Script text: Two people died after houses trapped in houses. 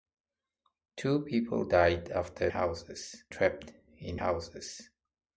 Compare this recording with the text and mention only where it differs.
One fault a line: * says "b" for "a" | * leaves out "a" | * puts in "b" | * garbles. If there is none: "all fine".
all fine